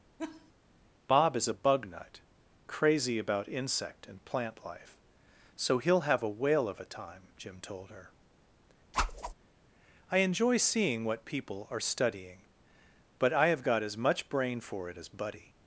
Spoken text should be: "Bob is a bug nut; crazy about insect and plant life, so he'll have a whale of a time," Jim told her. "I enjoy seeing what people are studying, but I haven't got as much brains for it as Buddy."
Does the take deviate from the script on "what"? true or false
false